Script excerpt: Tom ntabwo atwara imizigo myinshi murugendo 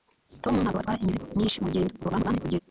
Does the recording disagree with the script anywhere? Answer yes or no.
yes